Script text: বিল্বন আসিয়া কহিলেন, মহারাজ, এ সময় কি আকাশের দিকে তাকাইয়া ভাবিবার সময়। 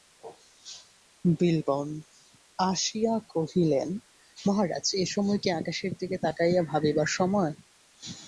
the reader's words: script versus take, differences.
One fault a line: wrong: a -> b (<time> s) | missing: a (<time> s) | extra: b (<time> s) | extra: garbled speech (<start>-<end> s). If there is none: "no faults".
no faults